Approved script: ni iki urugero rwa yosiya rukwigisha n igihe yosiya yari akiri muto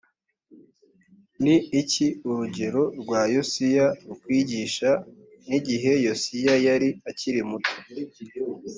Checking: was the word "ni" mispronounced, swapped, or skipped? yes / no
no